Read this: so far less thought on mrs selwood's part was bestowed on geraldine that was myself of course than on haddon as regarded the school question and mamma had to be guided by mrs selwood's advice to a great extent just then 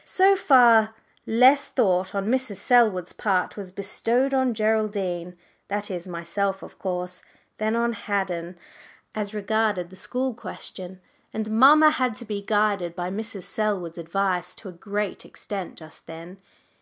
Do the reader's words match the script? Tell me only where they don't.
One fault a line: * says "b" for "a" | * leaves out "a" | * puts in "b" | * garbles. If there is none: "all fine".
* says "is" for "was"